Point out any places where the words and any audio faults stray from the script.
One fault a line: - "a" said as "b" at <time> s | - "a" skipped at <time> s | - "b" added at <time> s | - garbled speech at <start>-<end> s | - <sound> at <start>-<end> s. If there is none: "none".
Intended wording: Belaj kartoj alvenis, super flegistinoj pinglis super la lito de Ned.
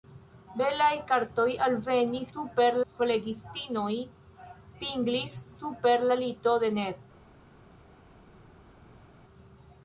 none